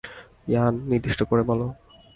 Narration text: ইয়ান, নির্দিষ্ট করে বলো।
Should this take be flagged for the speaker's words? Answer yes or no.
no